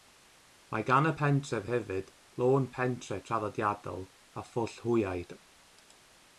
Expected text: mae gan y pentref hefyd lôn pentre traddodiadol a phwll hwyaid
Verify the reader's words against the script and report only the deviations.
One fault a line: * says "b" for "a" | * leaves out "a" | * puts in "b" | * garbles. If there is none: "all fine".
all fine